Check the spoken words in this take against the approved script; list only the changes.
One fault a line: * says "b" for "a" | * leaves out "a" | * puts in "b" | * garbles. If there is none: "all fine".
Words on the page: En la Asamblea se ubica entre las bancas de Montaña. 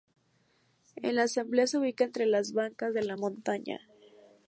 * puts in "la"